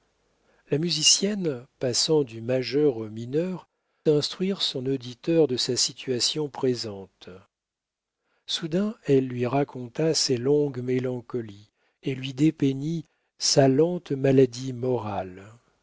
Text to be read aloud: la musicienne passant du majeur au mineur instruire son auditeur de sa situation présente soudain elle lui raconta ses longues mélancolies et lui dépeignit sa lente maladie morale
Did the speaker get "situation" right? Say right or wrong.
right